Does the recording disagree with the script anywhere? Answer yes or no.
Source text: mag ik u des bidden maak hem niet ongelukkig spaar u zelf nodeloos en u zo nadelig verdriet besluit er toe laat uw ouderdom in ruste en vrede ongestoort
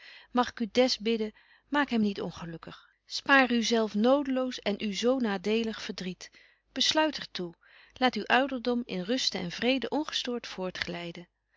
no